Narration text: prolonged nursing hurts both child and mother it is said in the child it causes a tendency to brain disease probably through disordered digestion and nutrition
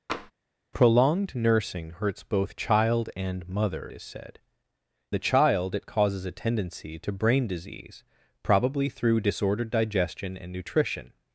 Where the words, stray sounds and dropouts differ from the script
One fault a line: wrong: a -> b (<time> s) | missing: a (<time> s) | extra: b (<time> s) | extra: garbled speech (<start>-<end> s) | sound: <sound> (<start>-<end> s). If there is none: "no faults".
sound: tap (0.1-0.3 s)
missing: it (3.9 s)
missing: in (4.4 s)